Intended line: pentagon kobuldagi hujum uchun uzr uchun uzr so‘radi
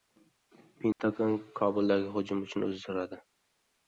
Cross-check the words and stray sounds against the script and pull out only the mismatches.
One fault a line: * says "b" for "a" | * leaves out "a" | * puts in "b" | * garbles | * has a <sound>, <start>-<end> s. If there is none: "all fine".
* has a dropout, 0.9-1.0 s
* leaves out "uchun uzr"